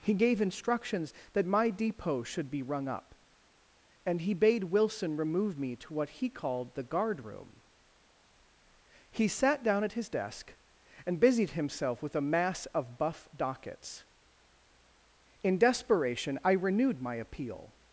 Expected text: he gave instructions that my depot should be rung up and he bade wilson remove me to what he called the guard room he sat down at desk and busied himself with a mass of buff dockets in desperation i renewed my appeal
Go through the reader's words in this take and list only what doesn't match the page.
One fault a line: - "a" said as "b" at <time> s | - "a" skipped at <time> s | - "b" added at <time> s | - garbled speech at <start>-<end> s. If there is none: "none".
- "his" added at 9.9 s